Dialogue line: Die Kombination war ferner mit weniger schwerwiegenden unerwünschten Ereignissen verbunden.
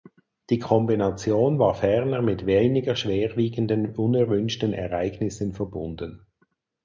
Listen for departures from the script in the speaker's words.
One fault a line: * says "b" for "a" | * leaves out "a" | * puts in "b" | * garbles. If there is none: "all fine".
all fine